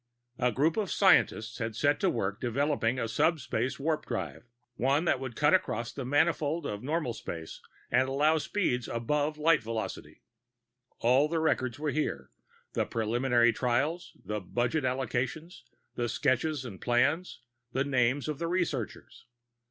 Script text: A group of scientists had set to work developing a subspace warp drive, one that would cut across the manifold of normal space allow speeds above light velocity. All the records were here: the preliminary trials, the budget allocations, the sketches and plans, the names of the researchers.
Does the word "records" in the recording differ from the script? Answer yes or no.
no